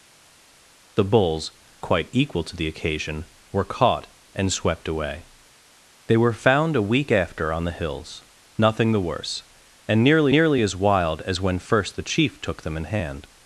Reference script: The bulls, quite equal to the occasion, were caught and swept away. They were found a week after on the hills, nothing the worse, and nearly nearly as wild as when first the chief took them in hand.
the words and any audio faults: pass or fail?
pass